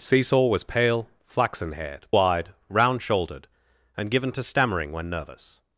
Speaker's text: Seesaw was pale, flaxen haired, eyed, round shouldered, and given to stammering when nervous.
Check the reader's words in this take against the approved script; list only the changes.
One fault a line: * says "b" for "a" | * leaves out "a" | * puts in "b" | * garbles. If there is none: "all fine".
all fine